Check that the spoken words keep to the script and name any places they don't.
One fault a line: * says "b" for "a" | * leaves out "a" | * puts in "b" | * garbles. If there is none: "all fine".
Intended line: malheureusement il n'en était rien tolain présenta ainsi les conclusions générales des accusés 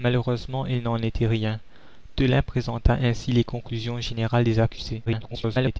* garbles